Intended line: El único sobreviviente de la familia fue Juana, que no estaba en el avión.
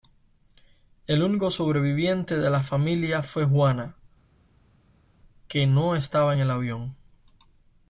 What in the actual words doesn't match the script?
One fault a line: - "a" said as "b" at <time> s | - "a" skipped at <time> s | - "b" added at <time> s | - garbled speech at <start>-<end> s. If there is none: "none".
none